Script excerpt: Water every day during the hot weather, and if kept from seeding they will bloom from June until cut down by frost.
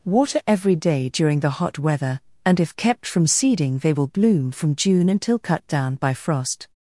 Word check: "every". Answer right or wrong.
right